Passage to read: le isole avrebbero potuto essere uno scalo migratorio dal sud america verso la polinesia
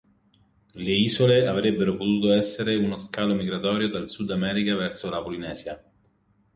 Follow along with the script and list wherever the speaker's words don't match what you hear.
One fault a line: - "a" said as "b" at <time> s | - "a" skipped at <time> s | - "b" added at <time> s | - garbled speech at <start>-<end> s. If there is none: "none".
none